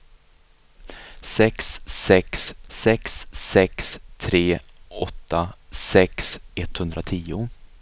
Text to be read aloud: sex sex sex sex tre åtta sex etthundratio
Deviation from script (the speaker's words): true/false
false